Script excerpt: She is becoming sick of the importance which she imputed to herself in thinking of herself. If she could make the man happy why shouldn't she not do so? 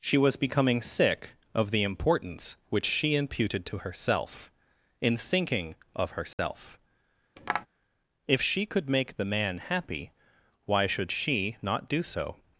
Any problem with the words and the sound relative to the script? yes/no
yes